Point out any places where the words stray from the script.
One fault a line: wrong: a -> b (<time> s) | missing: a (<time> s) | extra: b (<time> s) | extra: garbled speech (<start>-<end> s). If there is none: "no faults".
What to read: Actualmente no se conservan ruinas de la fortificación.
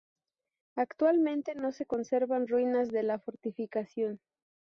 no faults